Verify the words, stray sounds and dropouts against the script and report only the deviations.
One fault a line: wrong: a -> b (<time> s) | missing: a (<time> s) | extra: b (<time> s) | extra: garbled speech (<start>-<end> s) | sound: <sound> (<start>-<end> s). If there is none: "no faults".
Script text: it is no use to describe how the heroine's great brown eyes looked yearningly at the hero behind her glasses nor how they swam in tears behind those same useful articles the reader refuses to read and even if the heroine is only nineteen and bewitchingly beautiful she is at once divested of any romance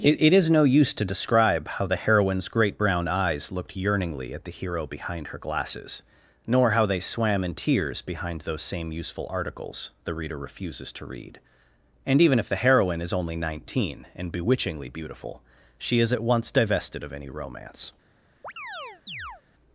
extra: it (0.2 s)
sound: chirp (18.4-19.4 s)